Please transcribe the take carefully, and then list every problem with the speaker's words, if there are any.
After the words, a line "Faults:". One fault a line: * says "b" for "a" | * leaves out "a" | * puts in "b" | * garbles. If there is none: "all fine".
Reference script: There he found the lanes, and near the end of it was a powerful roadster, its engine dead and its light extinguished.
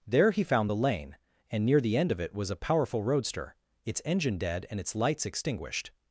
There he found the lane, and near the end of it was a powerful roadster, its engine dead and its lights extinguished.
Faults:
* says "lane" for "lanes"
* says "lights" for "light"